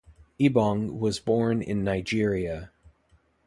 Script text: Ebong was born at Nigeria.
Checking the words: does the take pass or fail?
fail